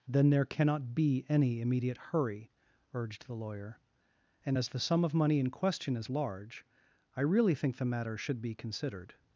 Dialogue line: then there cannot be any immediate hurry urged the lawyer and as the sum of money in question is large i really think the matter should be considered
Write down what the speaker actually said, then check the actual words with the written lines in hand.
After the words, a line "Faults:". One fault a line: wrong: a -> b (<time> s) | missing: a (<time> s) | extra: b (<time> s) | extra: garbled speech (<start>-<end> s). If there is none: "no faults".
then there cannot be any immediate hurry urged the lawyer and as the sum of money in question is large i really think the matter should be considered
Faults:
no faults